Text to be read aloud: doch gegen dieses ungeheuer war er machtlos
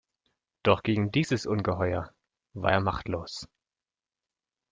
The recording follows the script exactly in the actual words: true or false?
true